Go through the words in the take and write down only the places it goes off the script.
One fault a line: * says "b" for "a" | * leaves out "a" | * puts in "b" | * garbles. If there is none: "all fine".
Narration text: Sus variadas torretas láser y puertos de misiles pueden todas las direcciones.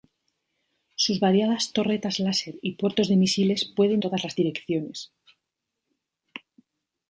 all fine